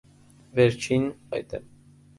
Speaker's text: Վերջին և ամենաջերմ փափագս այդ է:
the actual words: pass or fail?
fail